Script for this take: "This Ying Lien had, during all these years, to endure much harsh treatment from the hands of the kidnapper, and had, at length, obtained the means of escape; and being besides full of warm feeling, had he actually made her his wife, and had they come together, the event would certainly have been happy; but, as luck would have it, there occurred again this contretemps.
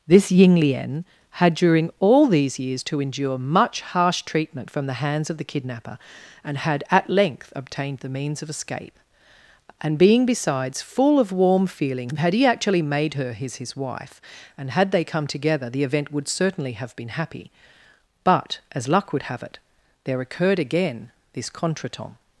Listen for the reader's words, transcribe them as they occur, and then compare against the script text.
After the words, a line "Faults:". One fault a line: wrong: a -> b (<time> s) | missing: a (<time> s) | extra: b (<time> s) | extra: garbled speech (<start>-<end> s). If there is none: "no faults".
"This Ying Lien had, during all these years, to endure much harsh treatment from the hands of the kidnapper, and had, at length, obtained the means of escape; and being besides full of warm feeling, had he actually made her his his wife, and had they come together, the event would certainly have been happy; but, as luck would have it, there occurred again this contretemps.
Faults:
extra: his (13.6 s)